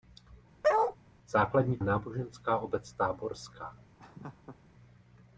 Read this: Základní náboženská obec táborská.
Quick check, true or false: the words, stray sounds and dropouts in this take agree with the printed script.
false